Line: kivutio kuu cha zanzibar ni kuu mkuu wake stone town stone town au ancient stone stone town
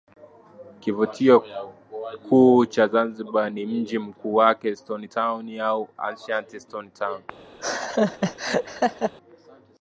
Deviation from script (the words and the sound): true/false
true